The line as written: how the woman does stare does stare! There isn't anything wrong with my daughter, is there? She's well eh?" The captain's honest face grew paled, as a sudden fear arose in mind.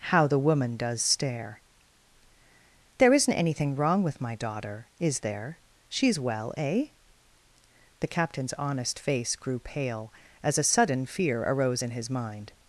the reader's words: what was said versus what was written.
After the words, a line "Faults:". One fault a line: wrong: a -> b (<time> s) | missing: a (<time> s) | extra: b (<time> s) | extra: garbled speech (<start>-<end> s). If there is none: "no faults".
how the woman does stare! There isn't anything wrong with my daughter, is there? She's well eh?" The captain's honest face grew pale, as a sudden fear arose in his mind.
Faults:
missing: does stare (1.6 s)
wrong: paled -> pale (9.6 s)
extra: his (11.9 s)